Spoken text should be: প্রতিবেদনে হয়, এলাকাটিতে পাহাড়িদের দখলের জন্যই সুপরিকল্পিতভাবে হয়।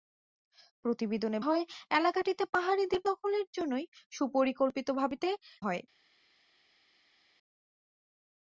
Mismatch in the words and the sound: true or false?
false